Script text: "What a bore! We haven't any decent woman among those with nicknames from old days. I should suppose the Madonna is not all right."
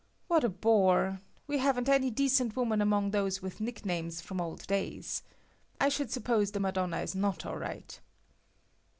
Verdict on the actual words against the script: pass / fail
pass